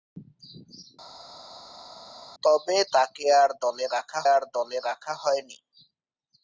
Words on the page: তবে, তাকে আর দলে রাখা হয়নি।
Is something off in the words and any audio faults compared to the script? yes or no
yes